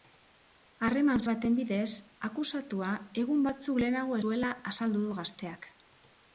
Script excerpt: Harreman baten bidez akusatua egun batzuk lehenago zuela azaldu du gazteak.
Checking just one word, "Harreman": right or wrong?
right